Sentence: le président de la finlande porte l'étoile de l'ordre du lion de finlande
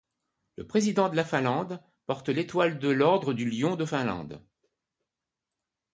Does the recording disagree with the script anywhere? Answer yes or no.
no